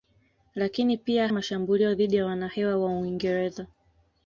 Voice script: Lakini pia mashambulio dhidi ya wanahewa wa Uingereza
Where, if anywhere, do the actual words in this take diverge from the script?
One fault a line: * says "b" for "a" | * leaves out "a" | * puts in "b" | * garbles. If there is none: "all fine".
all fine